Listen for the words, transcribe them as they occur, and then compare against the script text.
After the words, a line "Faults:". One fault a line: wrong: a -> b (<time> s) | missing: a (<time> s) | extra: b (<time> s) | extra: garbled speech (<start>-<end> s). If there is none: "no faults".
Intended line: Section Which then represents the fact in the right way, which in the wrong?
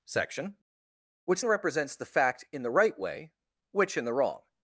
Section Which represents the fact in the right way, which in the wrong?
Faults:
missing: then (1.4 s)